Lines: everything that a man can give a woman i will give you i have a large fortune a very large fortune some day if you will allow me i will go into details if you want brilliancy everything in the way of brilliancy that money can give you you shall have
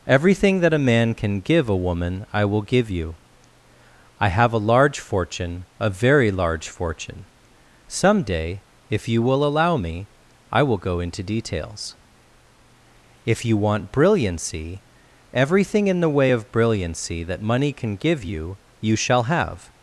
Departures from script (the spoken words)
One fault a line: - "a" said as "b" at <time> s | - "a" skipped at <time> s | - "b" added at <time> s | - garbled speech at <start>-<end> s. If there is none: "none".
none